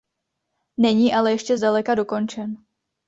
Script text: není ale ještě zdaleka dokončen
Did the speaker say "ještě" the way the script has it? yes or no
yes